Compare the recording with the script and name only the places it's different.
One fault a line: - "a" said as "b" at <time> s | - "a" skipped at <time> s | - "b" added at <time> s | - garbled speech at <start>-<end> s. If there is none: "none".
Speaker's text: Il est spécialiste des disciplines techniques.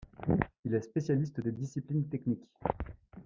none